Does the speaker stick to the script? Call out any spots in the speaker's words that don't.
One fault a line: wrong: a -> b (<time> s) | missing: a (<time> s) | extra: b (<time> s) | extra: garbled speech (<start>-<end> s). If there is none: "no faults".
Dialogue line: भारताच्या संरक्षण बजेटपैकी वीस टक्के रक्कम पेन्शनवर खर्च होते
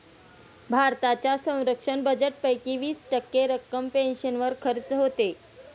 no faults